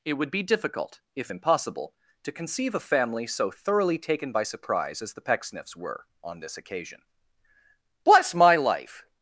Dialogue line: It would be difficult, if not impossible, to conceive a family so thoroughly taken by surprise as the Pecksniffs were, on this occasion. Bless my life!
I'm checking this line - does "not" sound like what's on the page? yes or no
no